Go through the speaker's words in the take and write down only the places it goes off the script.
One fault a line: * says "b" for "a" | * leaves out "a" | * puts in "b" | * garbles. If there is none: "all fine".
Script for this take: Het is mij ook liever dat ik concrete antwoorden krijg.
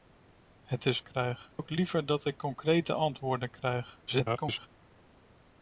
* says "krijg" for "mij"
* garbles